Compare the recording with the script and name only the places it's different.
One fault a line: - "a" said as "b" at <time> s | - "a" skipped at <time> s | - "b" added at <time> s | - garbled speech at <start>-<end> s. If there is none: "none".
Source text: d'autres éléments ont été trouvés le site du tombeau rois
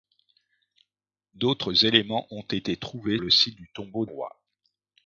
none